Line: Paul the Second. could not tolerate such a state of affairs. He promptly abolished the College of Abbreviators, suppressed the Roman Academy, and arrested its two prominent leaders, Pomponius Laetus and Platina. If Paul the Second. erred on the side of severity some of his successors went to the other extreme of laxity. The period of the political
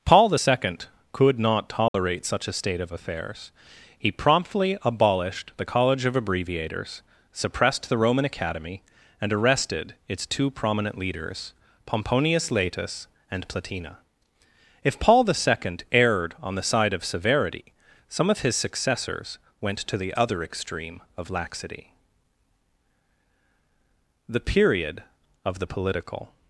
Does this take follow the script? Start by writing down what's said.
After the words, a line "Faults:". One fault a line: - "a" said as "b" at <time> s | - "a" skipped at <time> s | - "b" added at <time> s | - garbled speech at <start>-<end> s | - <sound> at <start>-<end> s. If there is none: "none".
Paul the Second. could not tolerate such a state of affairs. He promptly abolished the College of Abbreviators, suppressed the Roman Academy, and arrested its two prominent leaders, Pomponius Laetus and Platina. If Paul the Second. erred on the side of severity some of his successors went to the other extreme of laxity. The period of the political
Faults:
- dropout at 1.9-1.9 s